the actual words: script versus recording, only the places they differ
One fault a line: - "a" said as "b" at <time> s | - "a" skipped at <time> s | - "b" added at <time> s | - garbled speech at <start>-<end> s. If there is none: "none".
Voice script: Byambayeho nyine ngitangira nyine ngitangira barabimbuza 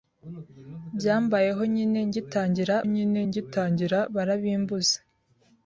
none